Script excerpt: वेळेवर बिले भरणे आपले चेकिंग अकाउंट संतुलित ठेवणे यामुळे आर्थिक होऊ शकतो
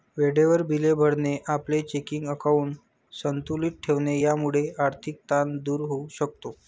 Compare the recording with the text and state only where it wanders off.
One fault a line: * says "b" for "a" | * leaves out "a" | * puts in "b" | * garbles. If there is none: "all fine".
* puts in "ताण दूर"